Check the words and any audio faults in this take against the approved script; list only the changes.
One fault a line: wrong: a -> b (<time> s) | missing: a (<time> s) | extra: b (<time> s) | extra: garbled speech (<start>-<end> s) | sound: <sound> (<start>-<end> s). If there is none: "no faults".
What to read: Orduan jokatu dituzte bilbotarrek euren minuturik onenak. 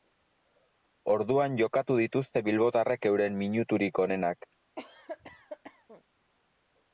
sound: cough (4.8-6.0 s)